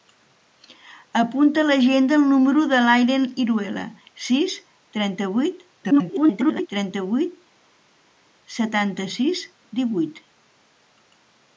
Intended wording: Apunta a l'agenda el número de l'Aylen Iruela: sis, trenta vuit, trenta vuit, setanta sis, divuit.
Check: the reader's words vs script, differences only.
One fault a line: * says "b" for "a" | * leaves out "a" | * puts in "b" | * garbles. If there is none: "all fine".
* garbles